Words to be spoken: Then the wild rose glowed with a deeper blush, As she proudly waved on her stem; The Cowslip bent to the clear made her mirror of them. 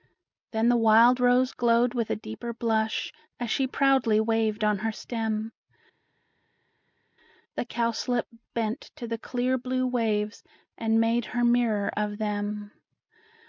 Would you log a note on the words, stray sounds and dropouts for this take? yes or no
yes